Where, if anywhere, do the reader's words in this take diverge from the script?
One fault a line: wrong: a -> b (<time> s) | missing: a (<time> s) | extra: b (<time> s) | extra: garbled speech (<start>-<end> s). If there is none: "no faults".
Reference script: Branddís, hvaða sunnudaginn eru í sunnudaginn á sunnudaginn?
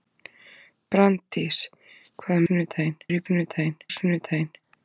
no faults